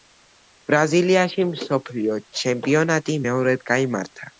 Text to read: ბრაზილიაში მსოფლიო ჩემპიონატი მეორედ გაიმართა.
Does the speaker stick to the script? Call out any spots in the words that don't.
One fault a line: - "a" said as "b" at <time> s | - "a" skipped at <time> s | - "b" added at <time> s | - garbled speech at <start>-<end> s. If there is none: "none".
none